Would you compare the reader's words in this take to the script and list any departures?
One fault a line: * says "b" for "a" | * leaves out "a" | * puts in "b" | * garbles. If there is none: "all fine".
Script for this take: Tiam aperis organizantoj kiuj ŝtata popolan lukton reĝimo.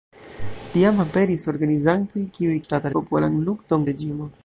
all fine